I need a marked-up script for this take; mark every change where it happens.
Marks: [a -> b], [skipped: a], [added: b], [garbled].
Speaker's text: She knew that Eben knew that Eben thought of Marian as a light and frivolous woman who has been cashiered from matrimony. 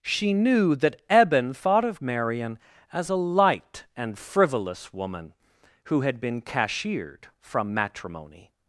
She knew that Eben [skipped: knew that Eben] thought of Marian as a light and frivolous woman who [has -> had] been cashiered from matrimony.